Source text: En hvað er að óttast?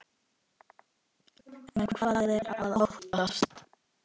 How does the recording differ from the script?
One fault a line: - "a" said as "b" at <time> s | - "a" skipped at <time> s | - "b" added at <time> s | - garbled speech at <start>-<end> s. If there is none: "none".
none